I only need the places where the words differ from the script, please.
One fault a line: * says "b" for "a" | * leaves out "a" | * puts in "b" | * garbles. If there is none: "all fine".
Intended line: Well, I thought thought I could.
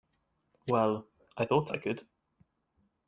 * leaves out "thought"